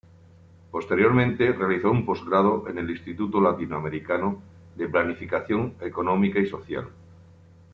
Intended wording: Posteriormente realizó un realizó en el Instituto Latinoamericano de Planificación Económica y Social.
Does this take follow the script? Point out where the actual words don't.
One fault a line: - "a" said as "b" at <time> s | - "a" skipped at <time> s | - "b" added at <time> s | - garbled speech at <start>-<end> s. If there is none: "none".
- "realizó" said as "postgrado" at 2.1 s